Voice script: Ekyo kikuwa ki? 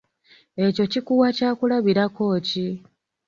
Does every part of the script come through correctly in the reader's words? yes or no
no